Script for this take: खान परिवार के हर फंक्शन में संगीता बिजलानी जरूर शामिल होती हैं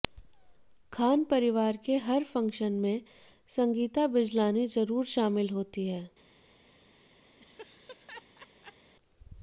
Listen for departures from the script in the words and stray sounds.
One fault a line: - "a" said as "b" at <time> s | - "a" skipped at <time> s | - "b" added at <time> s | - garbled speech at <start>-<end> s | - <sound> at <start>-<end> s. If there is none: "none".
- laugh at 7.4-8.9 s